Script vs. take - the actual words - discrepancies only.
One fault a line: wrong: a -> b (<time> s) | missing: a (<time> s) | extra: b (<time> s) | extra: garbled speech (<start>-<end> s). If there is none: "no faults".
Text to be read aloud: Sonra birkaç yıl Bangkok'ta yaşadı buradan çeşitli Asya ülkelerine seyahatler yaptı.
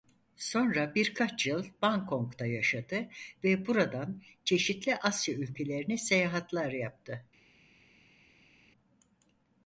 extra: ve (3.4 s)